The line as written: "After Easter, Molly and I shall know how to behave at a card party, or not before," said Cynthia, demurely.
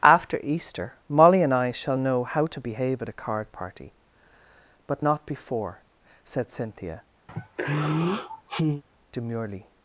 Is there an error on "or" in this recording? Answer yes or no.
yes